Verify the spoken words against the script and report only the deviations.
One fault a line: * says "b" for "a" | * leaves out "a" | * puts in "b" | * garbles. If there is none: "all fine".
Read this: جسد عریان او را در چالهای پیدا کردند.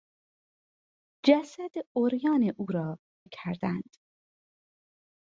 * leaves out "در چالهای پیدا"